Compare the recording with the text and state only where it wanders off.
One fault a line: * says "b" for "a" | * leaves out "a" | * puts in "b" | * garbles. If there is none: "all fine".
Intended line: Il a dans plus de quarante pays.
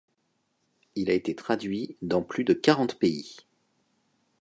* puts in "été traduit"